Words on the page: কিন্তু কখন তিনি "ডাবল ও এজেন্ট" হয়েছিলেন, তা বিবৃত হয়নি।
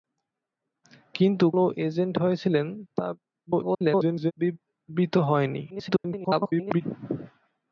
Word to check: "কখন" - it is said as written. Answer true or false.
false